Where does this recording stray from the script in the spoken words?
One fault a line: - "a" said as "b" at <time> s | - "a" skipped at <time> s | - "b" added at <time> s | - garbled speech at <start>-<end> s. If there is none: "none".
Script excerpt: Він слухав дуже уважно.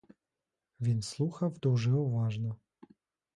none